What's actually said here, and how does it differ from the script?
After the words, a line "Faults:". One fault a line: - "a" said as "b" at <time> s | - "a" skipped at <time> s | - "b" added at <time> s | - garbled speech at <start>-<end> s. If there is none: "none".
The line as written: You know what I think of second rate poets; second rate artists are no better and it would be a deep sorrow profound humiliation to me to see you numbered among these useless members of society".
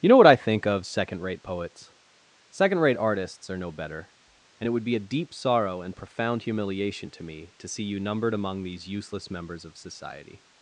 You know what I think of second rate poets; second rate artists are no better and it would be a deep sorrow and profound humiliation to me to see you numbered among these useless members of society".
Faults:
- "and" added at 5.8 s